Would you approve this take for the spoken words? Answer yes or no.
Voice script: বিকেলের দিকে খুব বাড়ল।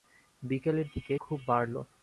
yes